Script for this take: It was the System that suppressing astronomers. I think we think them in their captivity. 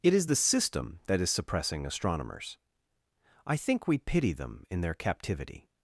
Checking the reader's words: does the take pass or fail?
fail